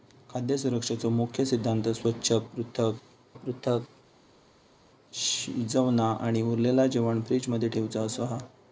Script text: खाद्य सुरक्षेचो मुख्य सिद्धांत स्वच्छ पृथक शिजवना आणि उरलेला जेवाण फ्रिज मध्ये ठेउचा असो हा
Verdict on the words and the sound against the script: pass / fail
fail